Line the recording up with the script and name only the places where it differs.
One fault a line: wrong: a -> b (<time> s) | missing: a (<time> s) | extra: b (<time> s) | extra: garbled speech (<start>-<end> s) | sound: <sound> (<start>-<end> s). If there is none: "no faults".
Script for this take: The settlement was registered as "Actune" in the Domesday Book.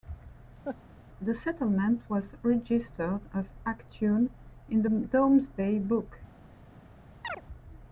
sound: laugh (0.6-0.8 s)
sound: chirp (7.2-7.4 s)